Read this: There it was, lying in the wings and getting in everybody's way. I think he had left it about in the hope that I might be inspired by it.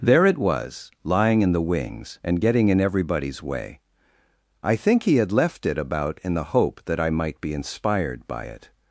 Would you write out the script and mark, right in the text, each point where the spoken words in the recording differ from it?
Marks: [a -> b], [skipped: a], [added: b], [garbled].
There it was, lying in the wings and getting in everybody's way. I think he had left it about in the hope that I might be inspired by it.